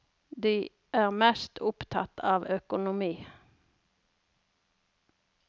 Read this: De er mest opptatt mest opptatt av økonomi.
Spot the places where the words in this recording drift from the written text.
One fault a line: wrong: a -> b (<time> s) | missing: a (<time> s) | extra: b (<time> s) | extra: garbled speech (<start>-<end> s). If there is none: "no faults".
missing: mest opptatt (2.2 s)